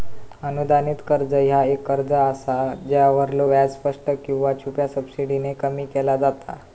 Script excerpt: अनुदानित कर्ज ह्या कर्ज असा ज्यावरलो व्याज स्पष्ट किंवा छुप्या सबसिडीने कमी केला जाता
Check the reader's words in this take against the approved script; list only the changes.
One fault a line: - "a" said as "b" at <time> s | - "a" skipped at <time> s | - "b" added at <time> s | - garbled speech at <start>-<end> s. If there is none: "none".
- "एक" added at 1.6 s